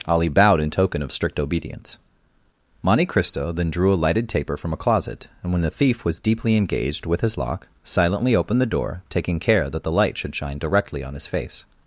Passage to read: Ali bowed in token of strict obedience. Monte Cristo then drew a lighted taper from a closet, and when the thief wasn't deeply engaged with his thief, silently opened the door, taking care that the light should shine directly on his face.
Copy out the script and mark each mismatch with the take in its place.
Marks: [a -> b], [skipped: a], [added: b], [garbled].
Ali bowed in token of strict obedience. Monte Cristo then drew a lighted taper from a closet, and when the thief [wasn't -> was] deeply engaged with his [thief, -> lock] silently opened the door, taking care that the light should shine directly on his face.